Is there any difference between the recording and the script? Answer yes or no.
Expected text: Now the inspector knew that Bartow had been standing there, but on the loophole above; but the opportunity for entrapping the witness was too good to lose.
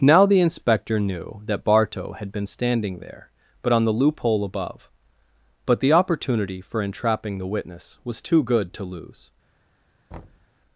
no